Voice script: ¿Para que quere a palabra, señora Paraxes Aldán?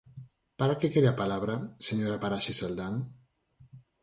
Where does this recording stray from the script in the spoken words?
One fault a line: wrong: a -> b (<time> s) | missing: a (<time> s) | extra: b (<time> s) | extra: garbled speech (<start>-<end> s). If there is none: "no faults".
no faults